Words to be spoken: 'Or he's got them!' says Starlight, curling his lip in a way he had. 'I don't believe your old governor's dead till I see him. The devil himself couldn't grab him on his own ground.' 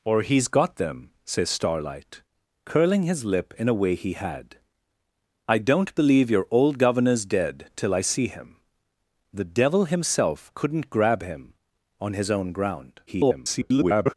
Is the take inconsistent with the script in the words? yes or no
yes